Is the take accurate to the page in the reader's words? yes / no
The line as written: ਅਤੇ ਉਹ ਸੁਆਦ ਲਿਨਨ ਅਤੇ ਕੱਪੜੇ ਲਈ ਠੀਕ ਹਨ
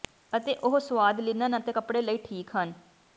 yes